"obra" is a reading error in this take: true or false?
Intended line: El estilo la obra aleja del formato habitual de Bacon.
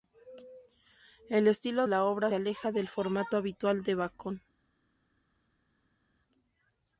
false